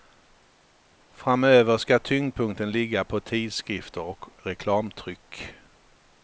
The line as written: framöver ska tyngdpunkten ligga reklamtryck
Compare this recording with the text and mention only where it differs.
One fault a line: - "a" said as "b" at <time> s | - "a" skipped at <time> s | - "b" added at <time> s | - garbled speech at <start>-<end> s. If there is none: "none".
- "på tidskrifter och" added at 3.0 s